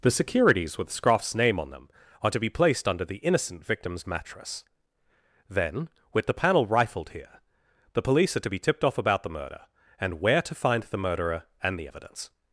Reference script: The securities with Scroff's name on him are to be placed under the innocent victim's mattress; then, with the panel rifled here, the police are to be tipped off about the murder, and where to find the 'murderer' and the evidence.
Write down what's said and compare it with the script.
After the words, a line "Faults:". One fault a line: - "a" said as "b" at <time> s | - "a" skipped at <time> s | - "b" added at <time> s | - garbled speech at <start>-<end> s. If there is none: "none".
The securities with Scroff's name on them are to be placed under the innocent victim's mattress; then, with the panel rifled here, the police are to be tipped off about the murder, and where to find the 'murderer' and the evidence.
Faults:
- "him" said as "them" at 1.7 s